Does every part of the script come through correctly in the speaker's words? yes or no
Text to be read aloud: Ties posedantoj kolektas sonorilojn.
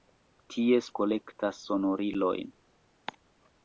no